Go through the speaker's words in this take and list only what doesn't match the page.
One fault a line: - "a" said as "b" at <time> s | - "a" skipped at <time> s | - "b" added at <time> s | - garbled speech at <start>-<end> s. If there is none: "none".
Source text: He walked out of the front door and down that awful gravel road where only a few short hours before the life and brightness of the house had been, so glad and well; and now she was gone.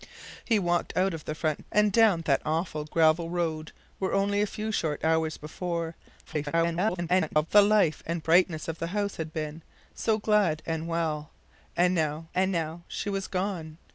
- "door" skipped at 1.7 s
- garbled speech at 6.3-7.5 s
- "and now" added at 12.3 s